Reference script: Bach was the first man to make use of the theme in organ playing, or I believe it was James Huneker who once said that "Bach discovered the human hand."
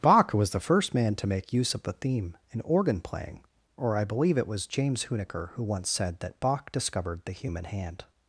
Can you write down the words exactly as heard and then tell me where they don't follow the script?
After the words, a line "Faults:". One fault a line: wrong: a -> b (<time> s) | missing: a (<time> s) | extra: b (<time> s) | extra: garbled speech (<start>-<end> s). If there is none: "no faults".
Bach was the first man to make use of the theme in organ playing, or I believe it was James Huneker who once said that "Bach discovered the human hand."
Faults:
no faults